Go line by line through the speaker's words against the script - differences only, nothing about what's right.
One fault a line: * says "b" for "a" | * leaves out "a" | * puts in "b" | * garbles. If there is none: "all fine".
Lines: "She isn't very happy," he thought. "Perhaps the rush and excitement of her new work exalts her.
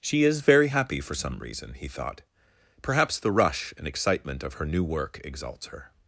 * says "is" for "isn't"
* puts in "for some reason"